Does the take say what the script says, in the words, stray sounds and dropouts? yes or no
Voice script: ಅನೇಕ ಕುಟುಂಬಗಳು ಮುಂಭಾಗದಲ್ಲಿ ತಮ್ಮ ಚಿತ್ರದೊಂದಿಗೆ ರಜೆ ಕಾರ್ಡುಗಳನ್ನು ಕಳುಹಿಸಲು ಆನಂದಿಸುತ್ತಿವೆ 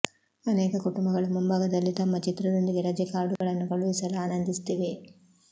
no